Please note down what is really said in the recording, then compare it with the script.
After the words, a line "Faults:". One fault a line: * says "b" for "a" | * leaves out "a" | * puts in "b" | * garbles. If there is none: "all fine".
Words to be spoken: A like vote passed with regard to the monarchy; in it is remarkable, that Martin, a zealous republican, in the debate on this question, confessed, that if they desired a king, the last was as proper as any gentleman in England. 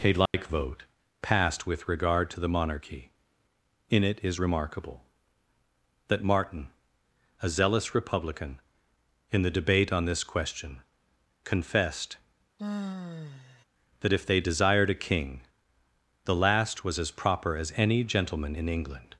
A like vote passed with regard to the monarchy; in it is remarkable, that Martin, a zealous republican, in the debate on this question, confessed, that if they desired a king, the last was as proper as any gentleman in England.
Faults:
all fine